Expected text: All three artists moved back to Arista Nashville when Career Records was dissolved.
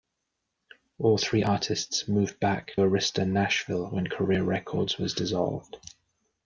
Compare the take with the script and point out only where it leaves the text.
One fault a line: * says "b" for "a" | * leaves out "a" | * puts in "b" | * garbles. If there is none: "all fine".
* leaves out "to"